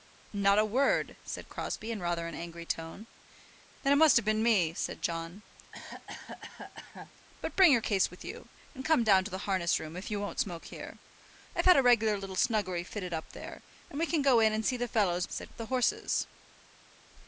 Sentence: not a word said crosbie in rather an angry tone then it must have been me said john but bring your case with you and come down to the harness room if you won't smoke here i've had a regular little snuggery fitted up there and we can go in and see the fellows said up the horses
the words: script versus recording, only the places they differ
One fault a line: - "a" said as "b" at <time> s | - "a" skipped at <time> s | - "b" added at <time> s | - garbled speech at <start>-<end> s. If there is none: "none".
none